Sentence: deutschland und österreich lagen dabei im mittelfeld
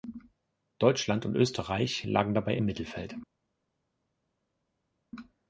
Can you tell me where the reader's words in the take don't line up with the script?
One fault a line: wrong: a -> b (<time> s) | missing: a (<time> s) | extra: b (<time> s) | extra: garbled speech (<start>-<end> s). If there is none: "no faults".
no faults